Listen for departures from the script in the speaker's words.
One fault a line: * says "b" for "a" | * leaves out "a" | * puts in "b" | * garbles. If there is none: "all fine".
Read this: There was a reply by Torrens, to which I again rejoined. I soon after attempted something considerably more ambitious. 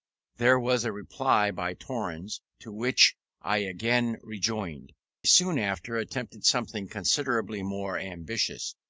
* leaves out "I"